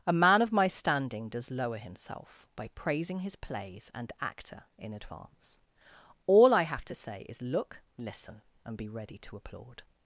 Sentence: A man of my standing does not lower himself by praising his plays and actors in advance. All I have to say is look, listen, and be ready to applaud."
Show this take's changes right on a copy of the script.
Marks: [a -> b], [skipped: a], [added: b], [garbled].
A man of my standing does [skipped: not] lower himself by praising his plays and [actors -> actor] in advance. All I have to say is look, listen, and be ready to applaud."